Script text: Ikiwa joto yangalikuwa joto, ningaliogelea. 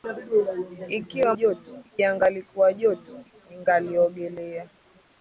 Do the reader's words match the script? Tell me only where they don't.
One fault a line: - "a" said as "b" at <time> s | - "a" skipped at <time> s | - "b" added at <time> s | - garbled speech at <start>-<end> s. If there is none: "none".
none